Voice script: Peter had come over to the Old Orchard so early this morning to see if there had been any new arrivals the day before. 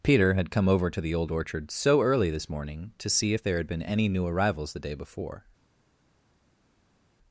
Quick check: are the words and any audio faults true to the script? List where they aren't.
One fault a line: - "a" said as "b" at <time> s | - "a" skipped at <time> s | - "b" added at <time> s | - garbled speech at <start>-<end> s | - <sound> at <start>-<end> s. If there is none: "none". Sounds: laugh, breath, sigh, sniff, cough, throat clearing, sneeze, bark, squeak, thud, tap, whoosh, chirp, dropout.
none